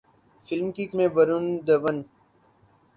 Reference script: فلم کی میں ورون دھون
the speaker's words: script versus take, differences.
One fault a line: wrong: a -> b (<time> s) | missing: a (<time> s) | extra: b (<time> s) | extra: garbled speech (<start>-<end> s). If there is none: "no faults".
no faults